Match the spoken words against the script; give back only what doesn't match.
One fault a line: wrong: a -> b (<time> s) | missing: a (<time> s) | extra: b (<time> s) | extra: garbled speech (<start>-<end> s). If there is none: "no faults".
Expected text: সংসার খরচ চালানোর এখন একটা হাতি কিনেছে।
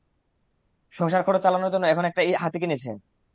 extra: জন্য (1.7 s)